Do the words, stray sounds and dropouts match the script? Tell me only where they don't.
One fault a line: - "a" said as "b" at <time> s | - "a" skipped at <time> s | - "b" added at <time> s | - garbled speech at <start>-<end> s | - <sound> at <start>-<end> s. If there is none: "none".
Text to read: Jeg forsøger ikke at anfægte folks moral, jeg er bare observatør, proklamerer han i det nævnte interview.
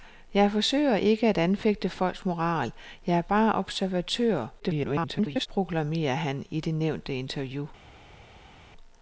- garbled speech at 4.6-5.5 s